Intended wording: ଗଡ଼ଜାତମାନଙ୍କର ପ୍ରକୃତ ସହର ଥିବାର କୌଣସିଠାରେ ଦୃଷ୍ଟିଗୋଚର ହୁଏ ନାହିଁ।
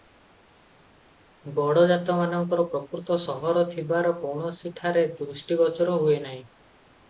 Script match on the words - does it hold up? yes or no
yes